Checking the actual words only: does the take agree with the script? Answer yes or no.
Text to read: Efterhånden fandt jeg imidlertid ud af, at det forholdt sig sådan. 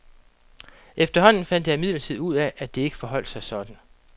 no